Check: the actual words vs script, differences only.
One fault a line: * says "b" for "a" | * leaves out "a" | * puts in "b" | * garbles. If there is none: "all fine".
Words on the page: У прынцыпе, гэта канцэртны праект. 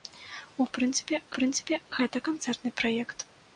* puts in "прынцыпе"